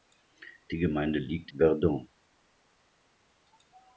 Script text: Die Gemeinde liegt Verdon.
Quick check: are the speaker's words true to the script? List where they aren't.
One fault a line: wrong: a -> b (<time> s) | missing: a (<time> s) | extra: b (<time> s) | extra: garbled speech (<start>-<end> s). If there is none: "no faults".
no faults